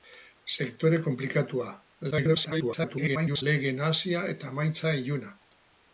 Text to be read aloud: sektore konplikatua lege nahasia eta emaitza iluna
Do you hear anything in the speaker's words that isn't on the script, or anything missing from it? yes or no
yes